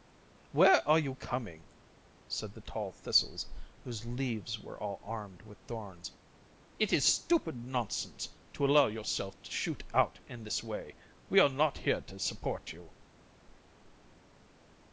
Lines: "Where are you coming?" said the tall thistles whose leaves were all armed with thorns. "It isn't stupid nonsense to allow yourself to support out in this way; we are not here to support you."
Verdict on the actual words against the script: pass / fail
fail